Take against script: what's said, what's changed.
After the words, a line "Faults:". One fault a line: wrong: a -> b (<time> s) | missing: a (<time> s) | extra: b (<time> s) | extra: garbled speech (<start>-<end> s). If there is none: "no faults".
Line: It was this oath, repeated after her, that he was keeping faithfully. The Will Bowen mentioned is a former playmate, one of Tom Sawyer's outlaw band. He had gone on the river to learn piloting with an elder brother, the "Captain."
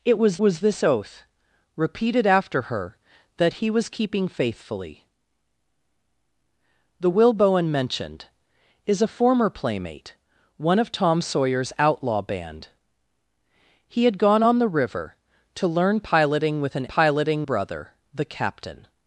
It was was this oath, repeated after her, that he was keeping faithfully. The Will Bowen mentioned is a former playmate, one of Tom Sawyer's outlaw band. He had gone on the river to learn piloting with an piloting brother, the "Captain."
Faults:
extra: was (0.4 s)
wrong: elder -> piloting (16.8 s)